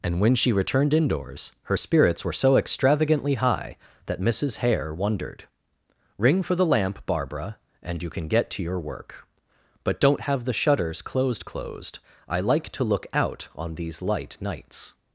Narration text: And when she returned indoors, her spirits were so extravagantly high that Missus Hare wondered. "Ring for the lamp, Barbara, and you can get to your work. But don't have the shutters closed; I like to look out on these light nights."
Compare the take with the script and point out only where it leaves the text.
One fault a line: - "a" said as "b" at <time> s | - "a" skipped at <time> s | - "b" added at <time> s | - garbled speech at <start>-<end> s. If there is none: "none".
- "closed" added at 11.5 s